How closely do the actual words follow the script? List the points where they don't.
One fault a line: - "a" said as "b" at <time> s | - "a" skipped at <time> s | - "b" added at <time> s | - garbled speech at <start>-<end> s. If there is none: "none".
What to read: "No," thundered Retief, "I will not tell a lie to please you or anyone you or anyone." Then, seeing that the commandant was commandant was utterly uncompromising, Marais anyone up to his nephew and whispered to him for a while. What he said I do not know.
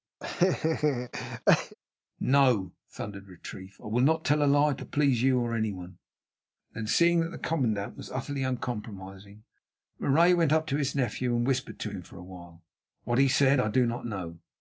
- "you or anyone" skipped at 6.0 s
- "commandant was" skipped at 8.1 s
- "anyone" said as "went" at 10.4 s